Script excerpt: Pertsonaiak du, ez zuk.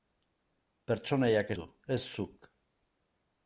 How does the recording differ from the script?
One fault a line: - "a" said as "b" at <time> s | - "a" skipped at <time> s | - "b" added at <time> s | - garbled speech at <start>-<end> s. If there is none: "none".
none